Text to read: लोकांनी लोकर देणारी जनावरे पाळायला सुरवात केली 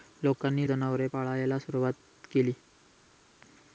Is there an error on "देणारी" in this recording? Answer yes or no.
yes